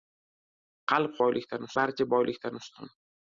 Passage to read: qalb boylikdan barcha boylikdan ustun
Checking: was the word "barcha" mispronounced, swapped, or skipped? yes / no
no